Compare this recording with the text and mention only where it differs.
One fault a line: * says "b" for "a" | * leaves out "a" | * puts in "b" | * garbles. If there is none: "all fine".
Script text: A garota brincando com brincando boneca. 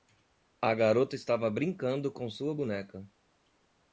* puts in "estava"
* says "sua" for "brincando"